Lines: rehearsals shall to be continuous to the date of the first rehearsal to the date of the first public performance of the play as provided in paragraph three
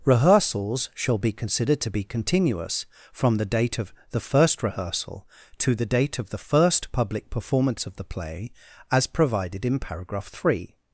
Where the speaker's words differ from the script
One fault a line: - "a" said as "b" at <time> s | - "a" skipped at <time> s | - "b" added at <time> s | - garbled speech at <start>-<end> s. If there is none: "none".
- "be considered" added at 1.2 s
- "to" said as "from" at 3.1 s